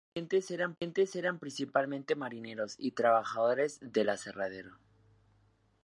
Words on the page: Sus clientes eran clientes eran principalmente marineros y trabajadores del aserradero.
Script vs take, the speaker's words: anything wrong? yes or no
no